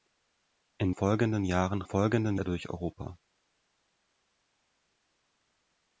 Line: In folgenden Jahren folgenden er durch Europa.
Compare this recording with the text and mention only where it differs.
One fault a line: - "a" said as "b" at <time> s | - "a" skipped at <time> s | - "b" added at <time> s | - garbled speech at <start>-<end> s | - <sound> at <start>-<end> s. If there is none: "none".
none